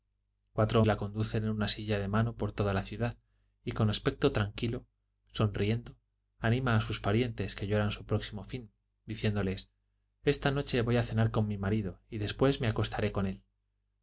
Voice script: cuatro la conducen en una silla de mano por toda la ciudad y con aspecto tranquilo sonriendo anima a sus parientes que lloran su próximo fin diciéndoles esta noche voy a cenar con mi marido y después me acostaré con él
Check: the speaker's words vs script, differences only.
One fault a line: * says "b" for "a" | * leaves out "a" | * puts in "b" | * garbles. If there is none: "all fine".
all fine